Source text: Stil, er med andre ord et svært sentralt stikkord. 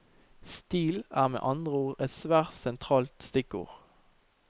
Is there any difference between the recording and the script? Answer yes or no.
no